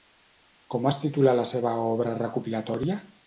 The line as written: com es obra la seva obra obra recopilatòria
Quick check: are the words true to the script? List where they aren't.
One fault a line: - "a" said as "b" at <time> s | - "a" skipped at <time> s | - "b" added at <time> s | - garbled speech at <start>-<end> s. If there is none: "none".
- "obra" said as "titula" at 1.0 s
- "obra" skipped at 2.2 s